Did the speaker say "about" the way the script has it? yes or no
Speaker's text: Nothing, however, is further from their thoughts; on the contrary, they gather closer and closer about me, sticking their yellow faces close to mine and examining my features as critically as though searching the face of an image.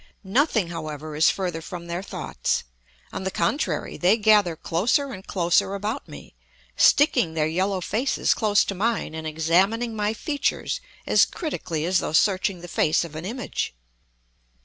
yes